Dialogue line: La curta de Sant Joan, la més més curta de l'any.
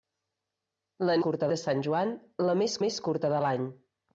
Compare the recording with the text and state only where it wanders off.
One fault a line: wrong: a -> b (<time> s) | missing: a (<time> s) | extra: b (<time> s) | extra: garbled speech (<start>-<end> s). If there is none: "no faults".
no faults